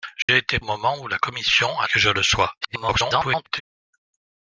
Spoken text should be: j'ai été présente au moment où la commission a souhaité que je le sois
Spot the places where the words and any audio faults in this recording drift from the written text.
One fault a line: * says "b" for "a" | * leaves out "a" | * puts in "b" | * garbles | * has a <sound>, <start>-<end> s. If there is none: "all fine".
* has a dropout, 0.2-0.3 s
* leaves out "présente"
* leaves out "souhaité"
* garbles